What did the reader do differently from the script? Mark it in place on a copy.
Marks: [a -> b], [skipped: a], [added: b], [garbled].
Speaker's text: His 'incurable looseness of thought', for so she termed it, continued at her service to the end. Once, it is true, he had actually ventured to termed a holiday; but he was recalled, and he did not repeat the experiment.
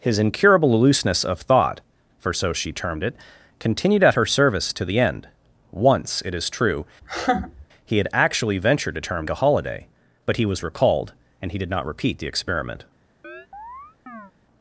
His 'incurable looseness of thought', for so she termed it, continued at her service to the end. Once, it is true, he had actually ventured to termed a holiday; but he was recalled, and he did not repeat the experiment.